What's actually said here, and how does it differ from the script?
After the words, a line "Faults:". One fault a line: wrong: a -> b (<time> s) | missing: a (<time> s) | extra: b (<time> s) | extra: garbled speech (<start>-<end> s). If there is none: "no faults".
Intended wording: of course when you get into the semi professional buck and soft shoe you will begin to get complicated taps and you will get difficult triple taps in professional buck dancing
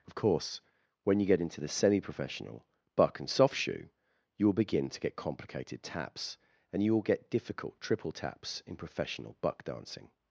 of course when you get into the semi professional buck and soft shoe you will begin to get complicated taps and you will get difficult triple taps in professional buck dancing
Faults:
no faults